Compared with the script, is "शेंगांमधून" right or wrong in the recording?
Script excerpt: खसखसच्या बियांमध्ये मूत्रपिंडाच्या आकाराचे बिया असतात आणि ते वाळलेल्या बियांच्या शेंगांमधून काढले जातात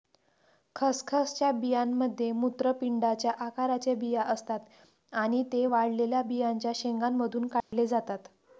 right